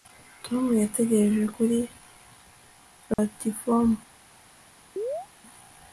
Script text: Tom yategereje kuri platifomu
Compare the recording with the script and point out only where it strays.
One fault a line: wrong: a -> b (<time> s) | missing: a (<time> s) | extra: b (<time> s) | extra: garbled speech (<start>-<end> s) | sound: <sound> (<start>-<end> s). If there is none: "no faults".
sound: dropout (3.1-3.2 s)
sound: chirp (5.0-5.3 s)